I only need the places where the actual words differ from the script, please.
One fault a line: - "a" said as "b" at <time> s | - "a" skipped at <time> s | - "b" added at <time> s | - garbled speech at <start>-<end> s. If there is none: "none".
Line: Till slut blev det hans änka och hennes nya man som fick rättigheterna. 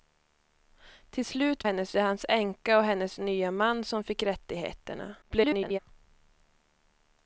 - "blev" said as "hennes" at 1.6 s
- garbled speech at 5.2-5.8 s